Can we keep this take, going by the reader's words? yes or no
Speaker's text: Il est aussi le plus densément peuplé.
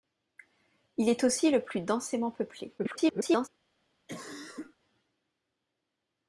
no